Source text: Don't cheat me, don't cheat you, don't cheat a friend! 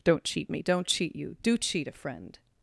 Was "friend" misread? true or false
false